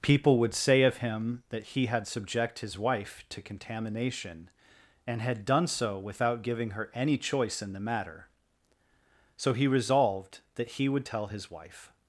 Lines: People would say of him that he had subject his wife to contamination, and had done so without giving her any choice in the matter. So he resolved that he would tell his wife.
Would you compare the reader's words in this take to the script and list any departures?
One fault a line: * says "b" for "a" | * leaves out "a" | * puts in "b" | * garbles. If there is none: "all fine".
all fine